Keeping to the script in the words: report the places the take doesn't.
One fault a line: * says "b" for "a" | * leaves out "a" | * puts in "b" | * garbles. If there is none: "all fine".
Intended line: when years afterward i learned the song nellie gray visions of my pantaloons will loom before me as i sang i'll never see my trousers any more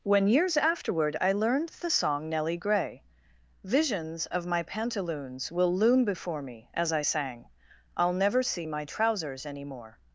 all fine